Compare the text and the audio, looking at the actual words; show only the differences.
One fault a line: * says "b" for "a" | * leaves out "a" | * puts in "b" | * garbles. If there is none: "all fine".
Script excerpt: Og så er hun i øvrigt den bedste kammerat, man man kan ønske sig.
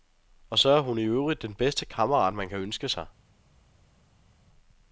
* leaves out "man"